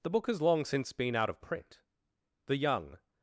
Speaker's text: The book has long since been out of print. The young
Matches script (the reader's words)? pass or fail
pass